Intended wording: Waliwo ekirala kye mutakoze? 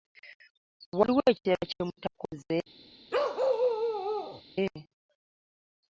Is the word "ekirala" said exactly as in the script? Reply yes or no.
yes